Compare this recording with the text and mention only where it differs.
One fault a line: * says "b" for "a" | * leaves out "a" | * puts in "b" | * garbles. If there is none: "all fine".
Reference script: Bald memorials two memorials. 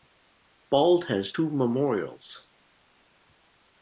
* says "has" for "memorials"